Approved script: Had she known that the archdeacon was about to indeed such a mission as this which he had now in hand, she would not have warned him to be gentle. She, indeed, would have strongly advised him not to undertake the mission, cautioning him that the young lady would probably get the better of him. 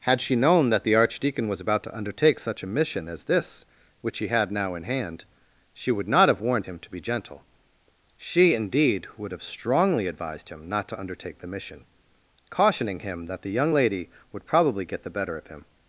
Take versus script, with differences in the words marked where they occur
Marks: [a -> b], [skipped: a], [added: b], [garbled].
Had she known that the archdeacon was about to [indeed -> undertake] such a mission as this which he had now in hand, she would not have warned him to be gentle. She, indeed, would have strongly advised him not to undertake the mission, cautioning him that the young lady would probably get the better of him.